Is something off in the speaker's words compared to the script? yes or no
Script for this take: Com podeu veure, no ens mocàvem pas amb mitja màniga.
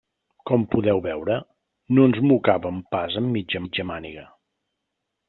yes